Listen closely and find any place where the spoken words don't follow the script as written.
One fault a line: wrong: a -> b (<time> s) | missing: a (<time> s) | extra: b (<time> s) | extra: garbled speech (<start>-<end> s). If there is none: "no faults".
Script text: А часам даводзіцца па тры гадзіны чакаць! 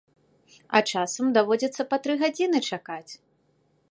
no faults